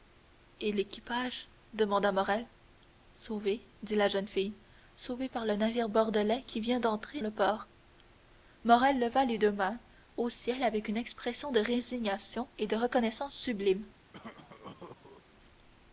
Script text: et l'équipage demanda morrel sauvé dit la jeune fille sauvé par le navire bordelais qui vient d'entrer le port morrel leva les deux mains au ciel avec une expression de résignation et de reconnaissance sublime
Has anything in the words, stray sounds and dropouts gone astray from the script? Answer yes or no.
yes